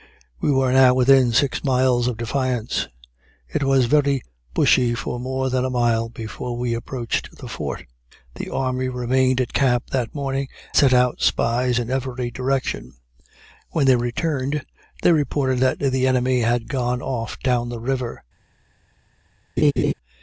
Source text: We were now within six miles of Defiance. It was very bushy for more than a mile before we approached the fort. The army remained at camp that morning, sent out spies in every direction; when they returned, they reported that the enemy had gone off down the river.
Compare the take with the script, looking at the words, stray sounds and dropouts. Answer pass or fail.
fail